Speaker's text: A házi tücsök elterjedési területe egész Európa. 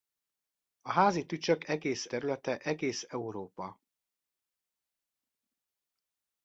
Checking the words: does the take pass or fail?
fail